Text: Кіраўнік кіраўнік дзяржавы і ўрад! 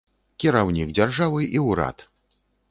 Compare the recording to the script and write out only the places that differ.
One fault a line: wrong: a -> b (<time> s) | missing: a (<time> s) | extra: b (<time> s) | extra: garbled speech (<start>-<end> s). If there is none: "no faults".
missing: кіраўнік (0.9 s)